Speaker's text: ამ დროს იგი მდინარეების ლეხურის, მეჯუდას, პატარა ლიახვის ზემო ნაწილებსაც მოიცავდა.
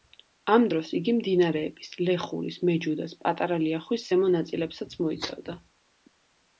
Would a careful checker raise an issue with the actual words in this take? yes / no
no